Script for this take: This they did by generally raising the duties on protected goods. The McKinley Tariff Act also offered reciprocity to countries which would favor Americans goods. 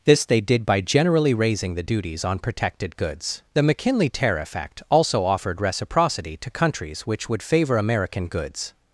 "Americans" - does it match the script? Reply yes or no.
no